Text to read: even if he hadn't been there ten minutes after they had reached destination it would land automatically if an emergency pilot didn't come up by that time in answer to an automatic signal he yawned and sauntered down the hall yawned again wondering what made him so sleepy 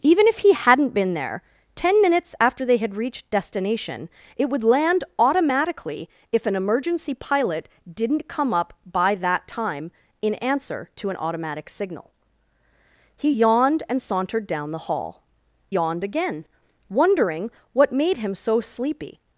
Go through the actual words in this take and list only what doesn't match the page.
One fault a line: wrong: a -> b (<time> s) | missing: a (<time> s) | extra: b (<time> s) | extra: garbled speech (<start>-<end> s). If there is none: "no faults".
no faults